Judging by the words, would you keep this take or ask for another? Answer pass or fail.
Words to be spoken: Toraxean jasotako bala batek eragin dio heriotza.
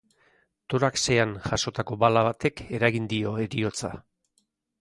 pass